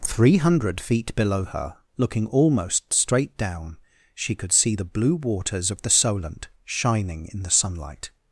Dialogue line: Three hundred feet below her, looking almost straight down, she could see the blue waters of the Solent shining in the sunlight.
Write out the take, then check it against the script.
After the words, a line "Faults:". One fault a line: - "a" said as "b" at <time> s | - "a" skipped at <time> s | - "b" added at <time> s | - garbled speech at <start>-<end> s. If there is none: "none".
Three hundred feet below her, looking almost straight down, she could see the blue waters of the Solent shining in the sunlight.
Faults:
none